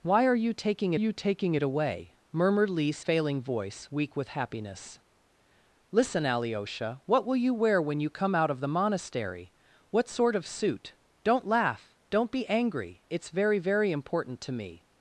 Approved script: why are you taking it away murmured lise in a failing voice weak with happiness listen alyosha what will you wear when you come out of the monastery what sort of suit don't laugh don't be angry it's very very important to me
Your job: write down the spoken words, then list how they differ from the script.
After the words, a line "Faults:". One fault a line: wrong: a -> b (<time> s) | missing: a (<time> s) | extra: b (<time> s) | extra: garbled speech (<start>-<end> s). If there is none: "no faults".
why are you taking you taking it away murmured lise failing voice weak with happiness listen alyosha what will you wear when you come out of the monastery what sort of suit don't laugh don't be angry it's very very important to me
Faults:
extra: you taking (0.9 s)
missing: in a (3.0 s)